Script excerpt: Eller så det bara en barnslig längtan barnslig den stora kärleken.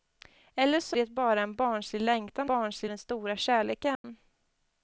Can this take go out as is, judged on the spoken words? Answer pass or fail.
pass